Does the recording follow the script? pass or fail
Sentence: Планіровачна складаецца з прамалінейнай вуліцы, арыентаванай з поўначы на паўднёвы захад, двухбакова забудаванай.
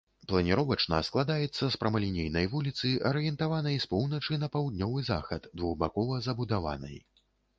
pass